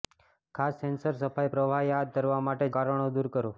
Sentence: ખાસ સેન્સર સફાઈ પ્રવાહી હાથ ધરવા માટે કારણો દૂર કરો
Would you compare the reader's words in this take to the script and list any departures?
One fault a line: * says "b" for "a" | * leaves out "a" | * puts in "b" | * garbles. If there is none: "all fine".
all fine